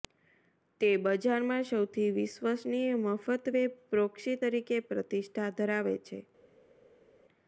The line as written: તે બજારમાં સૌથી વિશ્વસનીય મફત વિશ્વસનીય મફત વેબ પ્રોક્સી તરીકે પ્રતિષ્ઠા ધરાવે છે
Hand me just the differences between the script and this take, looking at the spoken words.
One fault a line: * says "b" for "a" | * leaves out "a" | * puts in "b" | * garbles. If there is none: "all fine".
* leaves out "વિશ્વસનીય મફત"